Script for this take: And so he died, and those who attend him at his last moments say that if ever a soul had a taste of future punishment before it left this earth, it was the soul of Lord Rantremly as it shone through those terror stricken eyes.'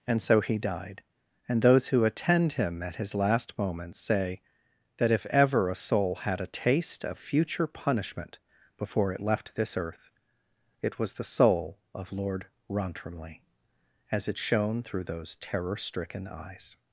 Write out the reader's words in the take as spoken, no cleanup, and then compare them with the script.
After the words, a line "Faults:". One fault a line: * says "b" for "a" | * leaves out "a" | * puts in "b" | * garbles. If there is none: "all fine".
And so he died, and those who attend him at his last moments say that if ever a soul had a taste of future punishment before it left this earth, it was the soul of Lord Rantremly as it shone through those terror stricken eyes.'
Faults:
all fine